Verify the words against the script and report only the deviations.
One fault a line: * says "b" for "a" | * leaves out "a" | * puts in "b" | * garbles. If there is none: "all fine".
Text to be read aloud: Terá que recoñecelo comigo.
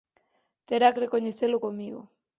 * leaves out "que"